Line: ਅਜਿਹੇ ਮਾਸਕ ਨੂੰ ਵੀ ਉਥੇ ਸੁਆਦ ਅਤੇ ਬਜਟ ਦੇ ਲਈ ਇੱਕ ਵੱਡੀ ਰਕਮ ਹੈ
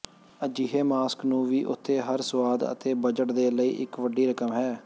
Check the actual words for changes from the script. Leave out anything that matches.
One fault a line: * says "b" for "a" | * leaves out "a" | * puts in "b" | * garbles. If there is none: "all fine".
* puts in "ਹਰ"